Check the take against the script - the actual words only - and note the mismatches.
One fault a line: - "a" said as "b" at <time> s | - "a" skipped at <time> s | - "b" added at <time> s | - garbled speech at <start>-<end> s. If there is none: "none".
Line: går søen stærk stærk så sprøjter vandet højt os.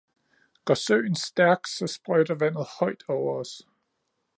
- "stærk" skipped at 1.7 s
- "over" added at 3.1 s